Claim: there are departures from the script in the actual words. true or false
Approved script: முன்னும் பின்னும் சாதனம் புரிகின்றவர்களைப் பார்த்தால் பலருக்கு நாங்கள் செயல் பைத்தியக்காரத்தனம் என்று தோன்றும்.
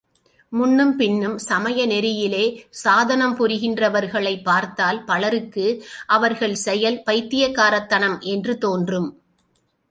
true